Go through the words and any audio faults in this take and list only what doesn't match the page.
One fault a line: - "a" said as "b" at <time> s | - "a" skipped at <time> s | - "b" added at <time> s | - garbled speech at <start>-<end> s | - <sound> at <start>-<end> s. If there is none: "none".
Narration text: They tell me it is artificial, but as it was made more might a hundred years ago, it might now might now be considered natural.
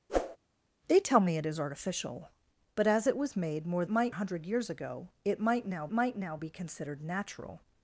- whoosh at 0.1-0.4 s